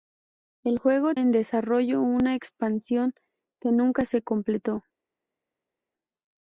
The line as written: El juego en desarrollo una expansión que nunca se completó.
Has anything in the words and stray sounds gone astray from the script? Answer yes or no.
no